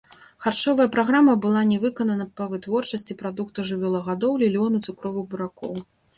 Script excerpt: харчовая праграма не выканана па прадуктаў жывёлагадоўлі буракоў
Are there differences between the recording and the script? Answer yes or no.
yes